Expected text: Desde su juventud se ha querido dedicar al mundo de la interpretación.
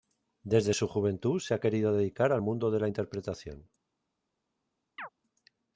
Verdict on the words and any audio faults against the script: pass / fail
fail